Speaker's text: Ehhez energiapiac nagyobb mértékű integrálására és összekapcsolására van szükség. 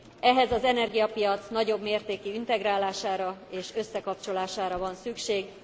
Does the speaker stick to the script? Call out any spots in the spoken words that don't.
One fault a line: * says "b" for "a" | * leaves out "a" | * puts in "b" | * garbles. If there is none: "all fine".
* puts in "az"